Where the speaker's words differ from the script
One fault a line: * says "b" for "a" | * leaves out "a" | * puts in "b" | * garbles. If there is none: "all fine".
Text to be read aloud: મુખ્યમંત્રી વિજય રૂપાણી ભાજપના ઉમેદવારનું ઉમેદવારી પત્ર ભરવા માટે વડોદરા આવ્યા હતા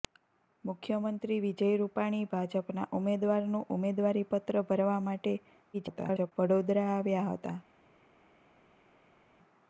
* garbles